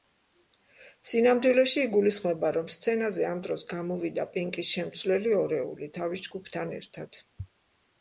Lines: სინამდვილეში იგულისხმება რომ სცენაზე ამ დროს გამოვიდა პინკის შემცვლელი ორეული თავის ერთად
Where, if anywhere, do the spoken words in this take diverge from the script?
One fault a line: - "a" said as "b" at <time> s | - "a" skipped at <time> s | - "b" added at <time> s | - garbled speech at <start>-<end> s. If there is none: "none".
- "ჯგუფთან" added at 6.3 s